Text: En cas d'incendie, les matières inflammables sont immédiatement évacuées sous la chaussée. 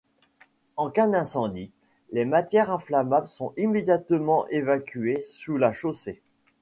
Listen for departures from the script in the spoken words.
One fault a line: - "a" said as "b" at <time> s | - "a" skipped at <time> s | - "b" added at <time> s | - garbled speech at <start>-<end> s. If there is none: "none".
none